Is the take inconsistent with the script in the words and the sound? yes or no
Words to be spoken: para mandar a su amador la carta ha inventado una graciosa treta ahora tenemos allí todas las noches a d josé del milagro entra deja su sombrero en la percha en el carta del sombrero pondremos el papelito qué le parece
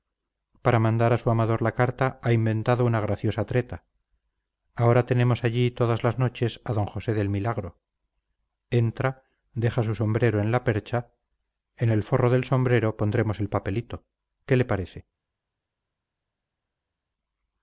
yes